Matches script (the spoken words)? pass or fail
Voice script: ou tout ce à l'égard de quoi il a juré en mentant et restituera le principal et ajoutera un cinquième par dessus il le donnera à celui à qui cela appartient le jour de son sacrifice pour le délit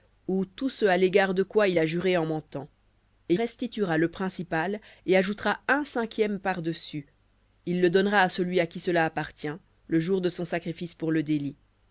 pass